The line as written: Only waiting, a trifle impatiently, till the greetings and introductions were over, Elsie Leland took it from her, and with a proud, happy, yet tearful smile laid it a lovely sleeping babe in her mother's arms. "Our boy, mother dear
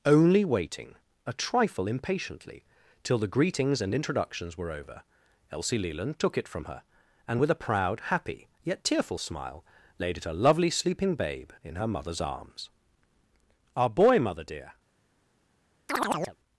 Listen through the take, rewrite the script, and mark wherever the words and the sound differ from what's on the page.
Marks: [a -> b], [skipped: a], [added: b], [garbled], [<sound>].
Only waiting, a trifle impatiently, till the greetings and introductions were over, Elsie Leland took it from her, and with a proud, happy, yet tearful smile laid it a lovely sleeping babe in her mother's arms. "Our boy, mother dear [chirp]